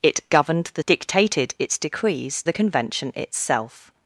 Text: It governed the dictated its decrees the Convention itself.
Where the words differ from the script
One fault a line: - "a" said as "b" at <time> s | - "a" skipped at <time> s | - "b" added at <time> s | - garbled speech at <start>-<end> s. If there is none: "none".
none